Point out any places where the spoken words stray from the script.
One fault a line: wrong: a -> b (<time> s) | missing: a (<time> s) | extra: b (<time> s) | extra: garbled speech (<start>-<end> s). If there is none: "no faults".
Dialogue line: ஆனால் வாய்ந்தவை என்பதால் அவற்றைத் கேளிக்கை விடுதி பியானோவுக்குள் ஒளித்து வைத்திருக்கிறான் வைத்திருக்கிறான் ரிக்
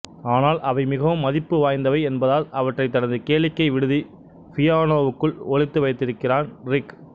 extra: அவை மிகவும் மதிப்பு (0.6 s)
extra: தனது (3.0 s)
missing: வைத்திருக்கிறான் (6.5 s)